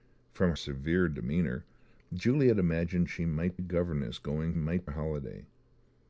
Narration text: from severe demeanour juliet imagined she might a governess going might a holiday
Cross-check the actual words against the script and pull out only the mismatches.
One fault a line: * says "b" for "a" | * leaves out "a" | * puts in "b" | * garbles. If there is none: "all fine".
all fine